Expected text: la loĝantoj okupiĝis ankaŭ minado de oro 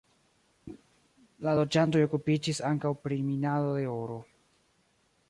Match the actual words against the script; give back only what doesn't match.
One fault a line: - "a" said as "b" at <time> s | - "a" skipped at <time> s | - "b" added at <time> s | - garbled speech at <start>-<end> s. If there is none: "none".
- "pri" added at 3.0 s